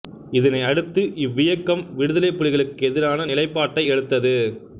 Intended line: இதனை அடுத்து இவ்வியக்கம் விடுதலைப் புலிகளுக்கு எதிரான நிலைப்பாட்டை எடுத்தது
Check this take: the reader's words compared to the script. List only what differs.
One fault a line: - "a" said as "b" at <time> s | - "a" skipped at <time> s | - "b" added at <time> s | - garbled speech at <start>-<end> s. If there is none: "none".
none